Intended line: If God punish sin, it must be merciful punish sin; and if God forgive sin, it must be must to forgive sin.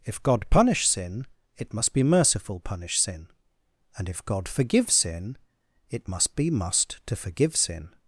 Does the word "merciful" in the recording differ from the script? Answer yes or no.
no